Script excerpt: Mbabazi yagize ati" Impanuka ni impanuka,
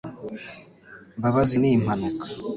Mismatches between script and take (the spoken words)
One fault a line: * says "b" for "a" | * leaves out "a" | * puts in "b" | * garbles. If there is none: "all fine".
* leaves out "yagize ati Impanuka"